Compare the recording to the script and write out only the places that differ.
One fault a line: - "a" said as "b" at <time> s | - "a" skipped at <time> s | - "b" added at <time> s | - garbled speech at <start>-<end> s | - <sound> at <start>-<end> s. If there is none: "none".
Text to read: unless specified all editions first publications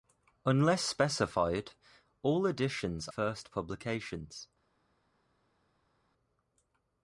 none